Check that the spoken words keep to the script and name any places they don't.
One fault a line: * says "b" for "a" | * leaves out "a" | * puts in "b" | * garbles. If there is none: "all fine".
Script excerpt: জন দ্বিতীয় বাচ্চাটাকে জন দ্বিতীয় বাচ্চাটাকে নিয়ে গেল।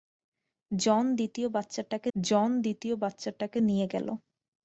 all fine